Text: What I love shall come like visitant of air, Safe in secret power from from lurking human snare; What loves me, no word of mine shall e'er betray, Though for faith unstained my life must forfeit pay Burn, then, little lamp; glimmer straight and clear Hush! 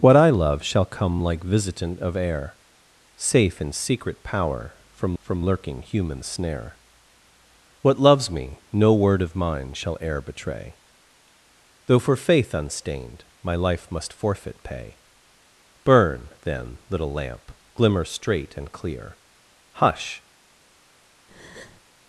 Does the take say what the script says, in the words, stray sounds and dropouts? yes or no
no